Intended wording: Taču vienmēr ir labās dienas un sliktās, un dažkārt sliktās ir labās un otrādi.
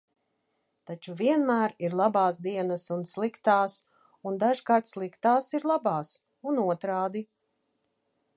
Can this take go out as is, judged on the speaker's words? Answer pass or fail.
pass